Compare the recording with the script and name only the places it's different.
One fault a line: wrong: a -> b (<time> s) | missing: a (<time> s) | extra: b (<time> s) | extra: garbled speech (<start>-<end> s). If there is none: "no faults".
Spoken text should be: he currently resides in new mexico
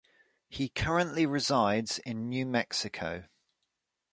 no faults